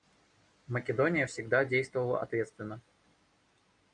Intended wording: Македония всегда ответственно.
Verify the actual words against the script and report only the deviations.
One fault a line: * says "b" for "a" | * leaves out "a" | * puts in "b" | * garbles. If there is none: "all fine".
* puts in "действовала"